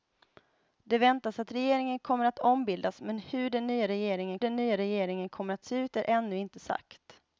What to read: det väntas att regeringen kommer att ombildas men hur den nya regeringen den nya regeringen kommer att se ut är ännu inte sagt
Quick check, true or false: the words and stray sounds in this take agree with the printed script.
true